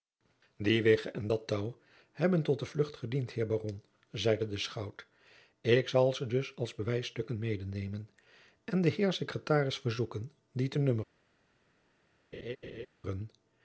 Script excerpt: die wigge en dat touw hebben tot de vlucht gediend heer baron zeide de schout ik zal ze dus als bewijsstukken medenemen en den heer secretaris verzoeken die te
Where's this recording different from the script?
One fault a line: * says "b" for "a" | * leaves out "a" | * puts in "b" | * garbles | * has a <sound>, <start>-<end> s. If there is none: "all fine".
* has a laugh, 12.3-12.9 s